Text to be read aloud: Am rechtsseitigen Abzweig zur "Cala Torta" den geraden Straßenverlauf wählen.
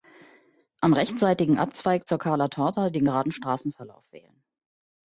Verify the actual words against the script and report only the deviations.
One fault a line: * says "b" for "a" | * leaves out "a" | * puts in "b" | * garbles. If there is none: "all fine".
all fine